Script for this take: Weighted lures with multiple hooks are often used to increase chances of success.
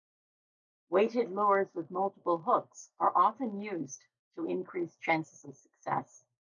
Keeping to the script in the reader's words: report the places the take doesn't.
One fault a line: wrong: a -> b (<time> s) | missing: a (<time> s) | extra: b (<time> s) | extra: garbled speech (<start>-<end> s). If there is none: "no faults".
no faults